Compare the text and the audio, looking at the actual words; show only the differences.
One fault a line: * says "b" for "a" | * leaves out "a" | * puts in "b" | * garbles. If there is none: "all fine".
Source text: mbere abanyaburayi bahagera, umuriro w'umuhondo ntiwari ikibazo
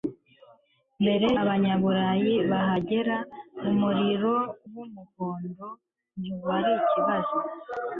all fine